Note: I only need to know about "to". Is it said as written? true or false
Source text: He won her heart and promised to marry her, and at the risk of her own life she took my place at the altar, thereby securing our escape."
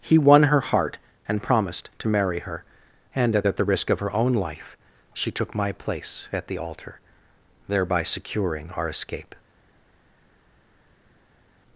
true